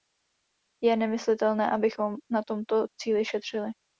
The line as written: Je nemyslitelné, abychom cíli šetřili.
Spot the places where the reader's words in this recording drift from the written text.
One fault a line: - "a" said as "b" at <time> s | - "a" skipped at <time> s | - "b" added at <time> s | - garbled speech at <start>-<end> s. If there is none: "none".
- "na tomto" added at 2.3 s